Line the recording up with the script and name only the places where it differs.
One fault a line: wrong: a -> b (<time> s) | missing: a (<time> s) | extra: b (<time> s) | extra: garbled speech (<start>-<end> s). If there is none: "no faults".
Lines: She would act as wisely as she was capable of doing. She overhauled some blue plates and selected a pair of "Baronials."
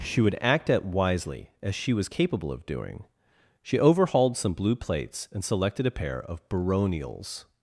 wrong: as -> at (0.7 s)